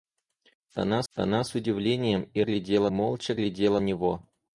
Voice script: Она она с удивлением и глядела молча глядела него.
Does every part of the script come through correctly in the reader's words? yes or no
yes